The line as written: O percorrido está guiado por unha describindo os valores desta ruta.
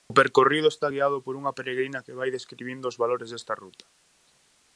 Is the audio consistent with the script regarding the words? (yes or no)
no